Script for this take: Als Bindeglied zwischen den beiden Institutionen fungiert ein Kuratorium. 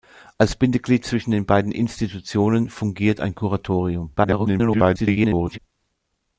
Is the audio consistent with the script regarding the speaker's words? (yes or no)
no